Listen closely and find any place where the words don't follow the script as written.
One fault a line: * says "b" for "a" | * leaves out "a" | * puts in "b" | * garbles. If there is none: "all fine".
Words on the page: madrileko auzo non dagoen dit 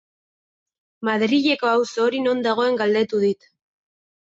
* puts in "hori"
* puts in "galdetu"